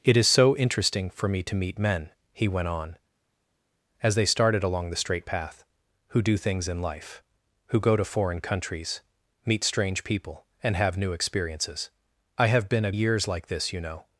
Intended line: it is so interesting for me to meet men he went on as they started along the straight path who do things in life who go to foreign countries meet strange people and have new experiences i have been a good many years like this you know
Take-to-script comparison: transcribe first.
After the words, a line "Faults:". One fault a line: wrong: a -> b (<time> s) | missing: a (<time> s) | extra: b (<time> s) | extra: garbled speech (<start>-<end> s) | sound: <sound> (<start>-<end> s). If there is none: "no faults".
it is so interesting for me to meet men he went on as they started along the straight path who do things in life who go to foreign countries meet strange people and have new experiences i have been a years like this you know
Faults:
missing: good many (12.9 s)